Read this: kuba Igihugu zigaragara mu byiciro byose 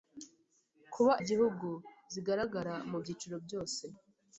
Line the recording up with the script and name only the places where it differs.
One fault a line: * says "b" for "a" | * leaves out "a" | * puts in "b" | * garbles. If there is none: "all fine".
all fine